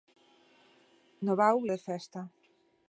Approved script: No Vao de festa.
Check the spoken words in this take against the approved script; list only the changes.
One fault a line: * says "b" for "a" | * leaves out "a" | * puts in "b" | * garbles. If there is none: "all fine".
all fine